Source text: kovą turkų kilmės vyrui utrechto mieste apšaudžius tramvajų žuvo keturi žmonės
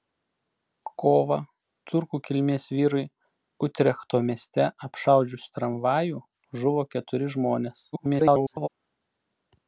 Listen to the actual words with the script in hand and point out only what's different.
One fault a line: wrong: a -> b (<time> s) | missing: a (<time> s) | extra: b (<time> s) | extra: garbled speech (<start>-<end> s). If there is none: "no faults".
extra: garbled speech (7.9-8.7 s)